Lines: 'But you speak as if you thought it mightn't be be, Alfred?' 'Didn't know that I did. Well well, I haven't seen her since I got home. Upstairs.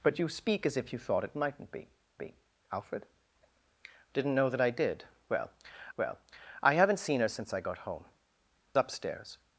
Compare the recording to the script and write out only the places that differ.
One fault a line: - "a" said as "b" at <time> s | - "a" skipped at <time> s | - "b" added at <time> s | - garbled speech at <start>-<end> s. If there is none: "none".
none